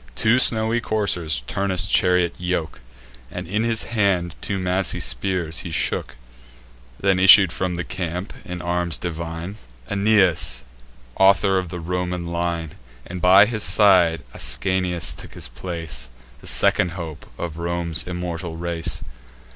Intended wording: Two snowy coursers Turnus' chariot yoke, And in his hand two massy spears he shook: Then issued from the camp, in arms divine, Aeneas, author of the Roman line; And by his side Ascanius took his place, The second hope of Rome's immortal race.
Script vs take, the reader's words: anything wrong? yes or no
no